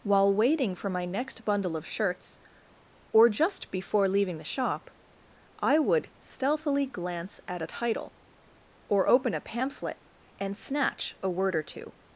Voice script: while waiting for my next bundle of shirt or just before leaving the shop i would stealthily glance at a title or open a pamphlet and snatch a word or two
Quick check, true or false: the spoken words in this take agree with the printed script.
false